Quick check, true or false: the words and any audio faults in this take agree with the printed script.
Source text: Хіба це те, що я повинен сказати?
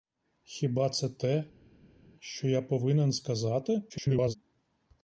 false